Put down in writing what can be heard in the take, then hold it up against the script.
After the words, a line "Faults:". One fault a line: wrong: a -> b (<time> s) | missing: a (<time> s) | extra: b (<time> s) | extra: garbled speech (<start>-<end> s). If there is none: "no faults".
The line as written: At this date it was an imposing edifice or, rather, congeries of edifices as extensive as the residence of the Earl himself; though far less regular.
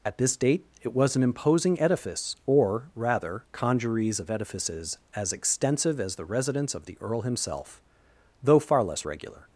At this date it was an imposing edifice or, rather, congeries of edifices as extensive as the residence of the Earl himself; though far less regular.
Faults:
no faults